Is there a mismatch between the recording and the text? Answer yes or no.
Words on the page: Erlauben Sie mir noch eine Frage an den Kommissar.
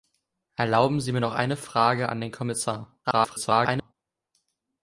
yes